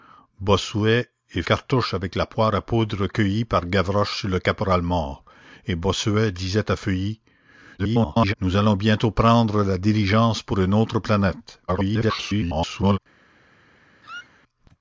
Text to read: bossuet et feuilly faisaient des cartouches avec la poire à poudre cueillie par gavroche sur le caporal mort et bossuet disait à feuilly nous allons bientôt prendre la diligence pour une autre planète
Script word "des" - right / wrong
wrong